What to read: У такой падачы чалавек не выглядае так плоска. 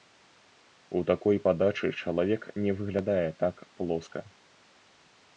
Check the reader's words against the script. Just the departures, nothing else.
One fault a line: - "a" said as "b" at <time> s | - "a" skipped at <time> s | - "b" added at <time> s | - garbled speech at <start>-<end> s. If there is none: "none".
none